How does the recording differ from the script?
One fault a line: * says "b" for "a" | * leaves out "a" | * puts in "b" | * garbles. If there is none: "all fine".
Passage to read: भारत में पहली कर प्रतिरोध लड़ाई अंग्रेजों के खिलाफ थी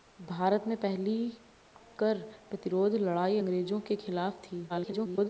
* garbles